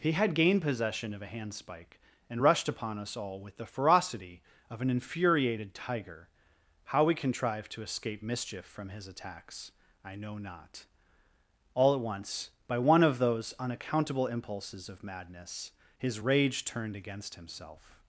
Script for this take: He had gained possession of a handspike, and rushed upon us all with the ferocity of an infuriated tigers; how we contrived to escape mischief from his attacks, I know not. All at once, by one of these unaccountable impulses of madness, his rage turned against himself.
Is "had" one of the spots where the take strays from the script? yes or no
no